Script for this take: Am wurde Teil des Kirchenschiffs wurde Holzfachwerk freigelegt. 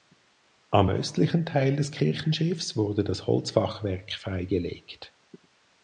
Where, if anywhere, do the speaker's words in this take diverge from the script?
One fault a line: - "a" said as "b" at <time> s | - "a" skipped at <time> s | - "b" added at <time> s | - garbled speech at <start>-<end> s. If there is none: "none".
- "wurde" said as "östlichen" at 0.9 s
- "das" added at 3.0 s